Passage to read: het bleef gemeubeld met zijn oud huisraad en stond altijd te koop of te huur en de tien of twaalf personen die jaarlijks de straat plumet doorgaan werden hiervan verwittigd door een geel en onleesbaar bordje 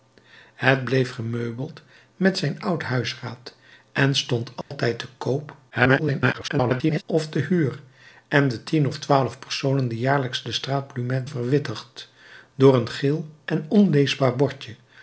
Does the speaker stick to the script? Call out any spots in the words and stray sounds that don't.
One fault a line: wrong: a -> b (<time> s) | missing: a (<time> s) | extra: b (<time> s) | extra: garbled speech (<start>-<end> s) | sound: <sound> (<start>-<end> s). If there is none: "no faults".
sound: dropout (4.6-4.7 s)
extra: garbled speech (5.7-7.0 s)
missing: doorgaan werden hiervan (11.3 s)